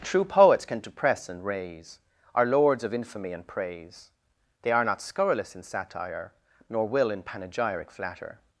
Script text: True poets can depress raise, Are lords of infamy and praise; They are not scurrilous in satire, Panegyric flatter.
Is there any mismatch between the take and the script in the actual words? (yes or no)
yes